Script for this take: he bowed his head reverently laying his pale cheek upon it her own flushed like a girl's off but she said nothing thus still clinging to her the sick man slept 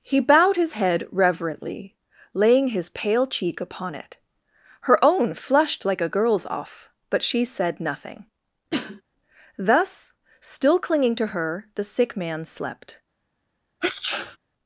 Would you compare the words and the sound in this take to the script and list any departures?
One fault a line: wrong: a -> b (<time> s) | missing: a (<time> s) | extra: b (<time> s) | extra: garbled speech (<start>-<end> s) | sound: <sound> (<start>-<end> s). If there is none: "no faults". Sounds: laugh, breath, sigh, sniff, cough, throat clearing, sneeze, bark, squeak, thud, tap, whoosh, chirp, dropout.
sound: cough (8.7-9.0 s)
sound: sneeze (13.8-14.4 s)